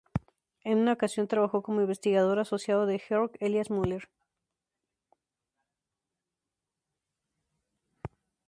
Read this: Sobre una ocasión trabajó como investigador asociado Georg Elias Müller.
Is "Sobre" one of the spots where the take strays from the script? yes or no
yes